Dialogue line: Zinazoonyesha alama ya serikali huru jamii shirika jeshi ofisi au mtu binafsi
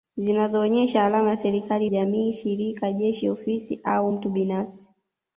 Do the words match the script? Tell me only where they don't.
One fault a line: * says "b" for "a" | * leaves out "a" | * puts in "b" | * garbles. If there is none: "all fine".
* leaves out "huru"